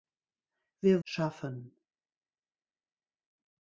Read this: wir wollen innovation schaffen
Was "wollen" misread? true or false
true